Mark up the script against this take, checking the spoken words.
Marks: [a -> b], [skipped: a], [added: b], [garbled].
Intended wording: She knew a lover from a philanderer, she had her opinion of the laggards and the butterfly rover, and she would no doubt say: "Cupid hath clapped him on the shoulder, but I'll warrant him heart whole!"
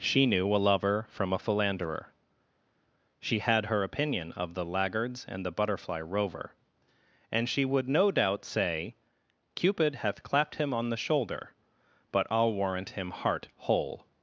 She knew a lover from a philanderer, she had her opinion of the laggards and the butterfly rover, and she would no doubt say: "Cupid hath clapped him on the shoulder, but I'll warrant him heart whole!"